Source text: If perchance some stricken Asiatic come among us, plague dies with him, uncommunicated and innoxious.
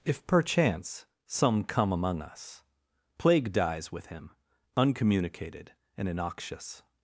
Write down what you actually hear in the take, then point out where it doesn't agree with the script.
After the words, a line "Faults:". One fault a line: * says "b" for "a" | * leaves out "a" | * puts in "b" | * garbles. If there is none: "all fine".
If perchance some come among us, plague dies with him, uncommunicated and innoxious.
Faults:
* leaves out "stricken Asiatic"